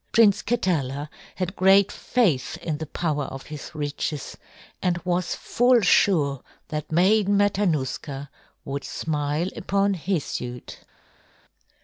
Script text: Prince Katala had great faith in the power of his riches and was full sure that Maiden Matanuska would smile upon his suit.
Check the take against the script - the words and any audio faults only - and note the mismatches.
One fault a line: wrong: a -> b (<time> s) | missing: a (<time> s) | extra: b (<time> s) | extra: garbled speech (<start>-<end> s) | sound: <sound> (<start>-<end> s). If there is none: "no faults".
no faults